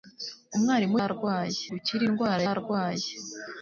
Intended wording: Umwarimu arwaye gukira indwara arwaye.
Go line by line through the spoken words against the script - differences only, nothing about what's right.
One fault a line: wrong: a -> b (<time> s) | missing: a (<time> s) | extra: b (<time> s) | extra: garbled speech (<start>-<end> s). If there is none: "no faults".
no faults